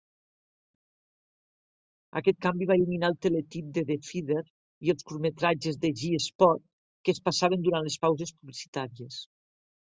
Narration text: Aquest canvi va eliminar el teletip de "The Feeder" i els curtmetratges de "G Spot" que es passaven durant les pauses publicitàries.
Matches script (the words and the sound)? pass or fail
pass